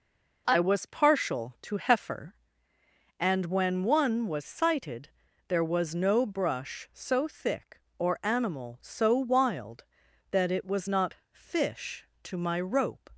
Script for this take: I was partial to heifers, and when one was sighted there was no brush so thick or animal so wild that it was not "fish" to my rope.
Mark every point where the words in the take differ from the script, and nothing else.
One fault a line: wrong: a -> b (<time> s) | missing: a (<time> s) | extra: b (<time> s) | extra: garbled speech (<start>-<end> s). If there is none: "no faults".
wrong: heifers -> heifer (1.8 s)